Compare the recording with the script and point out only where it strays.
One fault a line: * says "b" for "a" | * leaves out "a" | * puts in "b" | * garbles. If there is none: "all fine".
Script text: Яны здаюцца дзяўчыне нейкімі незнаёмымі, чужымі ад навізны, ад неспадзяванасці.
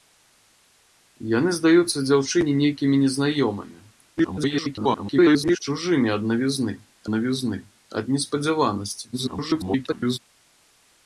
* garbles
* puts in "навізны"
* garbles